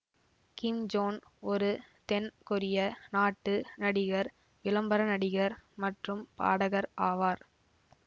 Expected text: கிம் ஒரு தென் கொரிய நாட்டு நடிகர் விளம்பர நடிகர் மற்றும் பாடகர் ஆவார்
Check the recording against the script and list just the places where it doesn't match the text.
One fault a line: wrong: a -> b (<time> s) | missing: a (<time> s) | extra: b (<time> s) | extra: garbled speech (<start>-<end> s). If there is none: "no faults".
extra: ஜோன் (0.9 s)